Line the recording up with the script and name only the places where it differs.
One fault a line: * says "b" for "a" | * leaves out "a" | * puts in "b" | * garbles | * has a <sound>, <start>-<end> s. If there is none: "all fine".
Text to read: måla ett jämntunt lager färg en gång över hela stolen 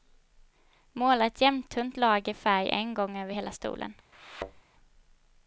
* has a thud, 4.1-4.6 s